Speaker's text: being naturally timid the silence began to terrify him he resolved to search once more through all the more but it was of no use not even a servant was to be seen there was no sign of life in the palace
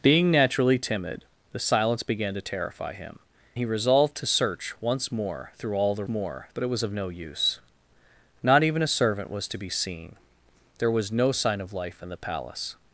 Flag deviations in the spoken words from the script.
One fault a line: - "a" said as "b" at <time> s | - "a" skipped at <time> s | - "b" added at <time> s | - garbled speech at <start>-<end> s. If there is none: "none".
none